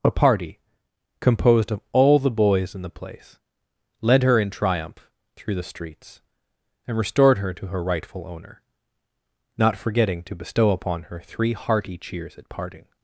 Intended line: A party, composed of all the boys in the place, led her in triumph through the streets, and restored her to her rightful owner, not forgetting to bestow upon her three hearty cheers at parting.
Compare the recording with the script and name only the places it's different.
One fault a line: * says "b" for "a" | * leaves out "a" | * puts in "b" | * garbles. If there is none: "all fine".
all fine